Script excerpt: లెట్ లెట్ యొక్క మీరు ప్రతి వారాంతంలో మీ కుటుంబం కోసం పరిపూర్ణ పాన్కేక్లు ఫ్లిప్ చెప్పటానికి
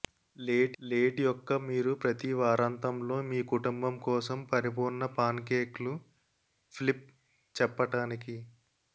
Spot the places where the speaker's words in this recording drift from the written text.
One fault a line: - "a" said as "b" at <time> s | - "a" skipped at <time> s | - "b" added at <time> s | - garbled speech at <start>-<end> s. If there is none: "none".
none